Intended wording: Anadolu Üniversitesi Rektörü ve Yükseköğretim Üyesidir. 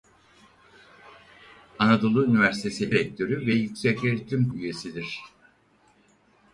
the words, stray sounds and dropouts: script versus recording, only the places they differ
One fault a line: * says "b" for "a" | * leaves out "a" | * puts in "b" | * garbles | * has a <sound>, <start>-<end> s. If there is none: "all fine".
all fine